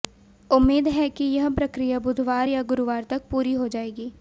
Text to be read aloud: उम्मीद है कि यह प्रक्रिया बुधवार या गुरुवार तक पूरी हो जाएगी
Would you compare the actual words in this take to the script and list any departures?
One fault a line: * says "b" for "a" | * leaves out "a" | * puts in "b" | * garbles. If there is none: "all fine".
all fine